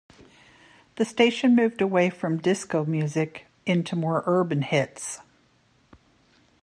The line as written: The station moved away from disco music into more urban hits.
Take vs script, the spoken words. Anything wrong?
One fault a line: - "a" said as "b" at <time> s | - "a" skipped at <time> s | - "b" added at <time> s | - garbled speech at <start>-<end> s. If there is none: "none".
none